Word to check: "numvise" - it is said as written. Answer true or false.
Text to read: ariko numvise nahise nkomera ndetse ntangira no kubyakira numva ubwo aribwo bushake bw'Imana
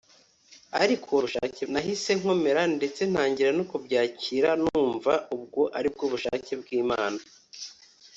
false